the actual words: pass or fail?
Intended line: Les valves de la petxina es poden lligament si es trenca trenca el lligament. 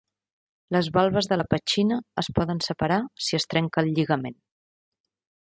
fail